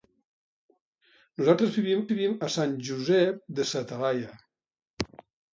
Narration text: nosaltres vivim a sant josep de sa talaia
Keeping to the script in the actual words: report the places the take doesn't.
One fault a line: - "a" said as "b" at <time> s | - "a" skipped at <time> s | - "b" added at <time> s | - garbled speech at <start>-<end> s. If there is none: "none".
- "vivim" added at 2.1 s